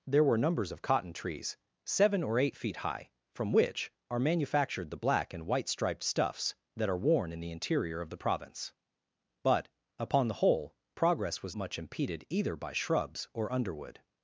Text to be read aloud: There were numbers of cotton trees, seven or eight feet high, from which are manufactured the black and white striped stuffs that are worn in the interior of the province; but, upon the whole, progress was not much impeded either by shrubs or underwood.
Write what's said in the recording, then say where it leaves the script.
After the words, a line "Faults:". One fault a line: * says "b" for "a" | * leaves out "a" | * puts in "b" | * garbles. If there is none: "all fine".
There were numbers of cotton trees, seven or eight feet high, from which are manufactured the black and white striped stuffs that are worn in the interior of the province; but, upon the whole, progress was much impeded either by shrubs or underwood.
Faults:
* leaves out "not"